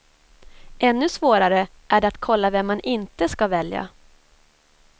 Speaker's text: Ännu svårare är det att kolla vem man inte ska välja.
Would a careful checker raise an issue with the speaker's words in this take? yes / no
no